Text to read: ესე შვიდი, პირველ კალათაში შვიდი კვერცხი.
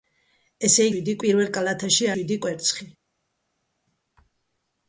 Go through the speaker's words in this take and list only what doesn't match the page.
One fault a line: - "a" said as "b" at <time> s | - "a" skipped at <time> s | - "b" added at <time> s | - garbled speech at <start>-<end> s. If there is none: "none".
none